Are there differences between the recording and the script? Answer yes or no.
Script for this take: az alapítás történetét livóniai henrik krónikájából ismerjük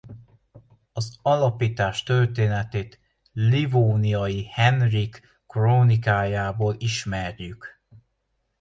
no